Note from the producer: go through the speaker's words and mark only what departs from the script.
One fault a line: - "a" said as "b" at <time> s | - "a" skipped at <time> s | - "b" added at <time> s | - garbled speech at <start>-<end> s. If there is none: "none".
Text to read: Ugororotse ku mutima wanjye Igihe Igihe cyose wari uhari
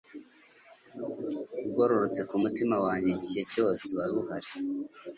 - "Igihe" skipped at 3.4 s